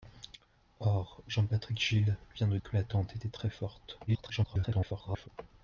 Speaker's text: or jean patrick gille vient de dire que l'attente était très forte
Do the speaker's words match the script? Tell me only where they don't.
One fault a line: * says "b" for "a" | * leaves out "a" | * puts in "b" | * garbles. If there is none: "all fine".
* leaves out "dire"
* garbles